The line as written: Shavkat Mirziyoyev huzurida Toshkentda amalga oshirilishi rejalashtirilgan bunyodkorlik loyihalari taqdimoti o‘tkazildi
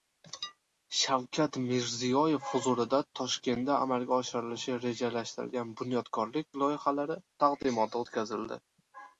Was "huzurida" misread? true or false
false